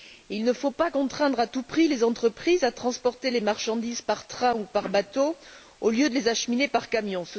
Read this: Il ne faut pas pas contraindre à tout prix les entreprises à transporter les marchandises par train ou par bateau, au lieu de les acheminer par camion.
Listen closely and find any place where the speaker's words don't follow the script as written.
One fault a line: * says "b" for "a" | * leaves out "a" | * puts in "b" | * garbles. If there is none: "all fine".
* leaves out "pas"